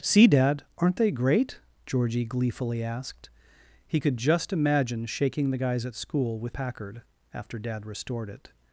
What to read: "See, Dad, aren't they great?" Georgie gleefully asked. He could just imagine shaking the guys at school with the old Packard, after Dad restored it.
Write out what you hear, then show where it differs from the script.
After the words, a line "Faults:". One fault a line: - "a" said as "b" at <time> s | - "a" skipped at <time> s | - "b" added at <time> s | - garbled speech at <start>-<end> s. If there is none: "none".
"See, Dad, aren't they great?" Georgie gleefully asked. He could just imagine shaking the guys at school with Packard, after Dad restored it.
Faults:
- "the old" skipped at 6.5 s